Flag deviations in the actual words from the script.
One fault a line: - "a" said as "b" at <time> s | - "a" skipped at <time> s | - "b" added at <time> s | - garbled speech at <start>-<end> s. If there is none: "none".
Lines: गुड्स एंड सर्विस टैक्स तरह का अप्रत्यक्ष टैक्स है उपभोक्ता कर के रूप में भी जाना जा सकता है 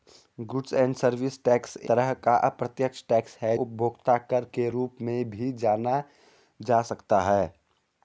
none